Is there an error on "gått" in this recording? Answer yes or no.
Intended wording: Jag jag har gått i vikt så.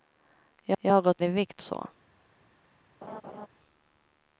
no